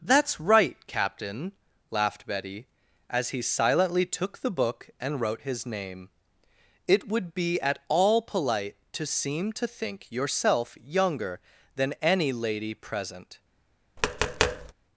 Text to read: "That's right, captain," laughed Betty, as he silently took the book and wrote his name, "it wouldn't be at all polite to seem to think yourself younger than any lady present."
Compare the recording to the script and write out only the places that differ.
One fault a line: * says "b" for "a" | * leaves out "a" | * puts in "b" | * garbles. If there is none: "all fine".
* says "would" for "wouldn't"